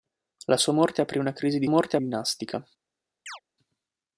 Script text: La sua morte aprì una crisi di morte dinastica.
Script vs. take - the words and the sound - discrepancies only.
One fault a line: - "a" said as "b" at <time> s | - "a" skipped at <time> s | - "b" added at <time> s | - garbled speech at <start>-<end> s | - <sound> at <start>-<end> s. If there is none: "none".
- chirp at 3.3-3.4 s